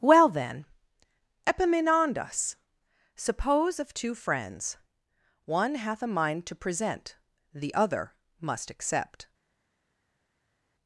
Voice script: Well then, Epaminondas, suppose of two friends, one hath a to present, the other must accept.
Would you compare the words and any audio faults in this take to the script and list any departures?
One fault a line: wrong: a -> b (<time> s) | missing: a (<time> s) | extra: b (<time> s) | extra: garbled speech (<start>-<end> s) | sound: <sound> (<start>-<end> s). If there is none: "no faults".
extra: mind (6.1 s)